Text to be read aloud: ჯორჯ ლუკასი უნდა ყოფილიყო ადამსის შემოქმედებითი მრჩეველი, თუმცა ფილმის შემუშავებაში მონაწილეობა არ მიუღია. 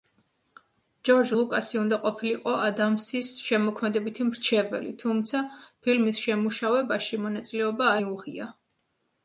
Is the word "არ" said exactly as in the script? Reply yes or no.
no